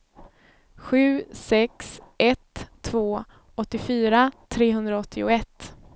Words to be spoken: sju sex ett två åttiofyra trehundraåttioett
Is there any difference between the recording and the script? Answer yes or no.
no